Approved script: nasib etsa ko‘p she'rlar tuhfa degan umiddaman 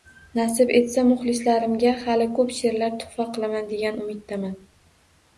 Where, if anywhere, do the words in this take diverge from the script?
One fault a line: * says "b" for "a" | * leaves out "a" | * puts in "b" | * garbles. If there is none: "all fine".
* puts in "muxlislarimga hali"
* puts in "qilaman"